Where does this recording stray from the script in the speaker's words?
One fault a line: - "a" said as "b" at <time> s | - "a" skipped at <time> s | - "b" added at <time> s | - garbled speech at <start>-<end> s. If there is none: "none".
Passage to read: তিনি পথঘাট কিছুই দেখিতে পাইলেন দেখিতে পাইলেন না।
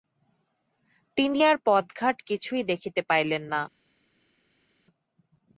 - "আর" added at 1.4 s
- "দেখিতে পাইলেন" skipped at 3.4 s